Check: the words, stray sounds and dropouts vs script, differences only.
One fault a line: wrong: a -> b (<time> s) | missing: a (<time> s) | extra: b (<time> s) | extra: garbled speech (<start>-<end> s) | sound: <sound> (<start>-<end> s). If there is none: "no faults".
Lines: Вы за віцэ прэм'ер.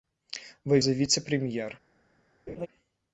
sound: laugh (2.5-2.7 s)